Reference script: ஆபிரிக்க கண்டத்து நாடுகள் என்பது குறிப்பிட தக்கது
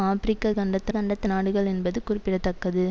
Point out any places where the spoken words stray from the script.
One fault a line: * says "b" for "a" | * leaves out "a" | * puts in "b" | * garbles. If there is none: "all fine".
* puts in "கண்டத்து"